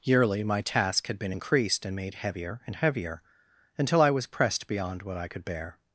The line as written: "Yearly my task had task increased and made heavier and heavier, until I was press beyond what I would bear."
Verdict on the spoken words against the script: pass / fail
fail